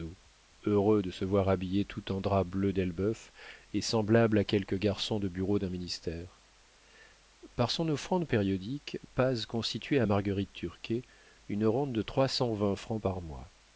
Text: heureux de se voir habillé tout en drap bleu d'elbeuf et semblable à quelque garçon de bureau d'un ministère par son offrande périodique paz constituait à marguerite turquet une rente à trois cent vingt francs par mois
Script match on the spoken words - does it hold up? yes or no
no